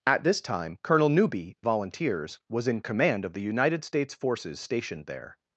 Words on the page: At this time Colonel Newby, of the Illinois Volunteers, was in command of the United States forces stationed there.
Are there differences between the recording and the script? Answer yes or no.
yes